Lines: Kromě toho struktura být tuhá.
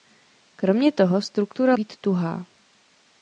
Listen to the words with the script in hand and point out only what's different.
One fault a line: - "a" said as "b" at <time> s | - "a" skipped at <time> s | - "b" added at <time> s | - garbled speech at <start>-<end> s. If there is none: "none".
none